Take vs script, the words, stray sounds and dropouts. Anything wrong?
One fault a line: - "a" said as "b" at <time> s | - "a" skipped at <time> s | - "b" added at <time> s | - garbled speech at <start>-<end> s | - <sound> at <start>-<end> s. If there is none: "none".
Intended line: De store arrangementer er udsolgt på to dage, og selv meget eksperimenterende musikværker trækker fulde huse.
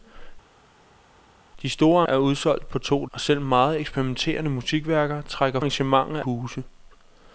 - "arrangementer" skipped at 2.0 s
- "dage" skipped at 3.1 s
- "fulde" said as "arrangementer" at 5.6 s